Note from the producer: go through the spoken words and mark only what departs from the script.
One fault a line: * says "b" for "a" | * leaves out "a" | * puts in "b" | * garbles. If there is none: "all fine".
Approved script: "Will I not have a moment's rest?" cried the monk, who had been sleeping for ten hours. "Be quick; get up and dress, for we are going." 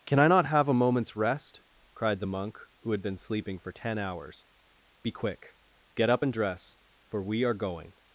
* says "Can" for "Will"